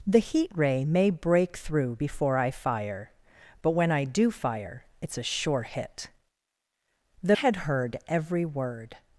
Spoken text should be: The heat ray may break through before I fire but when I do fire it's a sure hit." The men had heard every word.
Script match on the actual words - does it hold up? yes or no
no